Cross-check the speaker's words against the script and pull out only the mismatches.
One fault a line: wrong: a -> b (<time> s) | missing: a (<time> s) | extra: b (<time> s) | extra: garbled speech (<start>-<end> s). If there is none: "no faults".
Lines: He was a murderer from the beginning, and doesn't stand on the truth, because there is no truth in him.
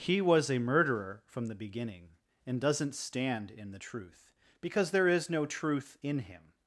wrong: on -> in (3.5 s)